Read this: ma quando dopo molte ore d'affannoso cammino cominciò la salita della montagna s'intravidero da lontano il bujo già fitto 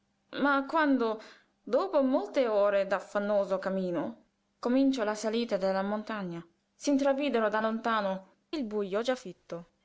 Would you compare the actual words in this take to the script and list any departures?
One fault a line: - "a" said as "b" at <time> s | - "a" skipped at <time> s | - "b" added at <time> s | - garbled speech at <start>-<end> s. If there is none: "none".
none